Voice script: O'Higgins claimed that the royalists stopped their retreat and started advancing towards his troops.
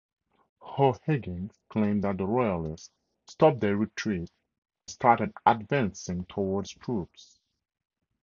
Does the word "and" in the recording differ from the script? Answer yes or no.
yes